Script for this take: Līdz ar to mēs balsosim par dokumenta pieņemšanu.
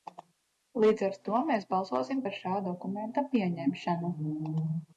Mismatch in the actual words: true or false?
true